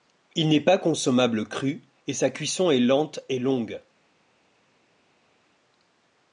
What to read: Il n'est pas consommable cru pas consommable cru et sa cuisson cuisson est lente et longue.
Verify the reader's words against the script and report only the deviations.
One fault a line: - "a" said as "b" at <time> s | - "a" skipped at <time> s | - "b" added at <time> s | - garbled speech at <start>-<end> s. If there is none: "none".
- "pas consommable cru" skipped at 1.8 s
- "cuisson" skipped at 2.7 s